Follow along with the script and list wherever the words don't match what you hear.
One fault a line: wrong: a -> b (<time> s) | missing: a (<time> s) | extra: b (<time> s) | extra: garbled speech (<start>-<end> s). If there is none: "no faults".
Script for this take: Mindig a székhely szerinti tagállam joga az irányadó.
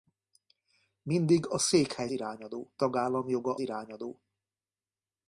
wrong: szerinti -> irányadó (2.1 s)
missing: az (3.6 s)